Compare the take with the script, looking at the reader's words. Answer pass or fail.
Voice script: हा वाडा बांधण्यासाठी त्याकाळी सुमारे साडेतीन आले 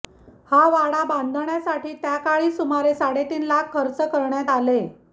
fail